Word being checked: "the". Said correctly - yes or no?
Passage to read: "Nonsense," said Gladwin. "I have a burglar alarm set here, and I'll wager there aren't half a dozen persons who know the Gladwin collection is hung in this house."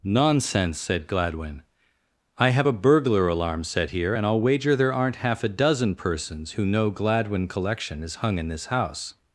no